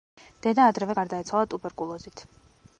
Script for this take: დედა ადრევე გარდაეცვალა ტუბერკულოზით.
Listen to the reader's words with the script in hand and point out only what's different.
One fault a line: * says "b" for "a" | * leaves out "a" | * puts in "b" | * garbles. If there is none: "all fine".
all fine